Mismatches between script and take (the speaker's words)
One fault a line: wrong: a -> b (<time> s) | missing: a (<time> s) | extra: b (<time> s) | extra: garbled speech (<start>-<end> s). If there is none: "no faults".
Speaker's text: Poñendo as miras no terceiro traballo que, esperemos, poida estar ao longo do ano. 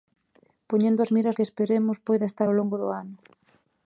missing: no terceiro traballo (1.4 s)